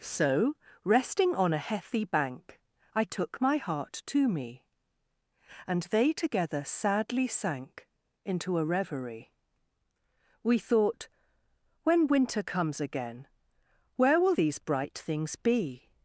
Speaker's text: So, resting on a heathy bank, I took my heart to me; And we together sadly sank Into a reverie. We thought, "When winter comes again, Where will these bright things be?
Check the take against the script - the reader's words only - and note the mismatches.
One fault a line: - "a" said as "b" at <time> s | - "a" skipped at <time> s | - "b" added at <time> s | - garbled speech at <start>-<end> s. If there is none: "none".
- "we" said as "they" at 5.8 s